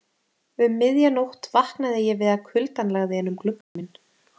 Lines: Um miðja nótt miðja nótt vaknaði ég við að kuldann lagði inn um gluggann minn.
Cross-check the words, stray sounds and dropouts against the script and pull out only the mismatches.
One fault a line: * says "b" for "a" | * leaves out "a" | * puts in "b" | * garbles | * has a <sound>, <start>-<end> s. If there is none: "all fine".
* leaves out "miðja nótt"
* has a dropout, 3.6-3.8 s